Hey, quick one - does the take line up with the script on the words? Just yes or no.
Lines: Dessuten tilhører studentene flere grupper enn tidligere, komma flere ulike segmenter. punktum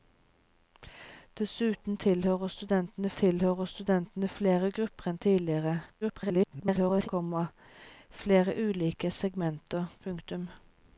no